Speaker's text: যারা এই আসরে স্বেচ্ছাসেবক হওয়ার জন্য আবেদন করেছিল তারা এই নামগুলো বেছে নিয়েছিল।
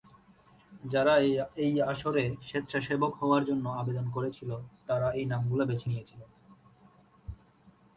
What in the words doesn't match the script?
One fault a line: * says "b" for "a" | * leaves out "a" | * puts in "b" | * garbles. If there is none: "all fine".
all fine